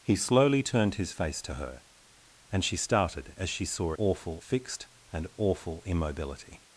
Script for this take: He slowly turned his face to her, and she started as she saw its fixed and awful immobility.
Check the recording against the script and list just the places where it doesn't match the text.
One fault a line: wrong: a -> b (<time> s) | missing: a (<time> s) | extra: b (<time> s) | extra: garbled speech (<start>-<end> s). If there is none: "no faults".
wrong: its -> awful (4.0 s)